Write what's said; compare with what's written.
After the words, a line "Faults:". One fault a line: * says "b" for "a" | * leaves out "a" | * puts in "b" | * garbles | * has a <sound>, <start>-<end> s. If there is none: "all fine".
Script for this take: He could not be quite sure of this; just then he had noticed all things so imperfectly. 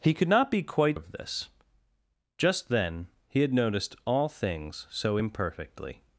He could not be quite of this; just then he had noticed all things so imperfectly.
Faults:
* leaves out "sure"